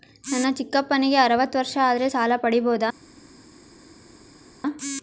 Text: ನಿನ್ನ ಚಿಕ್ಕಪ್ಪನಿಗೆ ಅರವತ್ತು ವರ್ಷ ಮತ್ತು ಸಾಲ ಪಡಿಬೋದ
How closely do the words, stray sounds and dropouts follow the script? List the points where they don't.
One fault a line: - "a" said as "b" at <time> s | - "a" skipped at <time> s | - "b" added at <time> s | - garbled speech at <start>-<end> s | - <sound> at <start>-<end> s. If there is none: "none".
- "ನಿನ್ನ" said as "ನನ್ನ" at 0.3 s
- "ಮತ್ತು" said as "ಆದರೆ" at 1.8 s